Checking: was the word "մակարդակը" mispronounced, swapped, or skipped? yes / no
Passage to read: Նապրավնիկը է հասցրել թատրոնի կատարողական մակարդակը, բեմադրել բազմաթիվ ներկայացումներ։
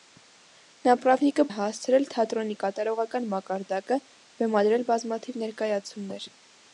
no